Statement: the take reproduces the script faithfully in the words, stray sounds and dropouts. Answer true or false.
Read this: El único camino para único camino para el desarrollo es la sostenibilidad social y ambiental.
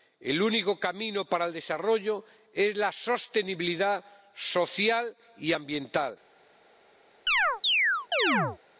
false